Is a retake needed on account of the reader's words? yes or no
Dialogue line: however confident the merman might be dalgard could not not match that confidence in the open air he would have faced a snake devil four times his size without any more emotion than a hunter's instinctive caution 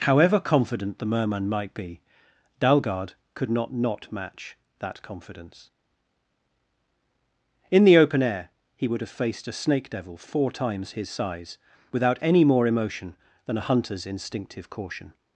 no